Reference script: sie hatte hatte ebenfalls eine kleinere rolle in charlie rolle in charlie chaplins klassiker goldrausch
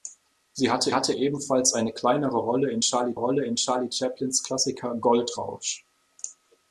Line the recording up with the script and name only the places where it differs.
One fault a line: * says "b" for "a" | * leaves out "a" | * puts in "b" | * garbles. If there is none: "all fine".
all fine